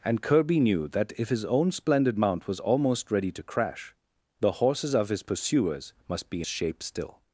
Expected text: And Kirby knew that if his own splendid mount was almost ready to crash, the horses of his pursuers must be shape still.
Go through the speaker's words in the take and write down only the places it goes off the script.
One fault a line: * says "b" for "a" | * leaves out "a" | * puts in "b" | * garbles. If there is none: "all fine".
all fine